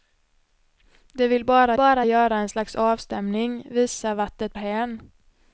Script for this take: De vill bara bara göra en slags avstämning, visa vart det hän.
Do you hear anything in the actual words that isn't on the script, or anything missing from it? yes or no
no